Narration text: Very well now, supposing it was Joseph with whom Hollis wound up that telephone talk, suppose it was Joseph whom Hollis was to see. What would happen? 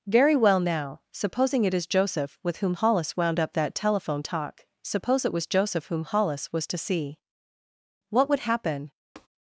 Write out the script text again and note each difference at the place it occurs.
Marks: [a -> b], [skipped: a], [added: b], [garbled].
Very well now, supposing it [was -> is] Joseph with whom Hollis wound up that telephone talk, suppose it was Joseph whom Hollis was to see. What would happen?